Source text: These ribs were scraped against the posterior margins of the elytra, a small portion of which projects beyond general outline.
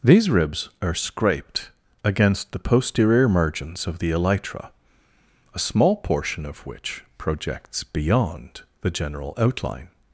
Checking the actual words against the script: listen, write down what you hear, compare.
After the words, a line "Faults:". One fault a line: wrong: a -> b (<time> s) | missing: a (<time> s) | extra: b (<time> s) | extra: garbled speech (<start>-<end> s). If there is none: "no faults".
These ribs are scraped against the posterior margins of the elytra, a small portion of which projects beyond the general outline.
Faults:
wrong: were -> are (0.8 s)
extra: the (8.8 s)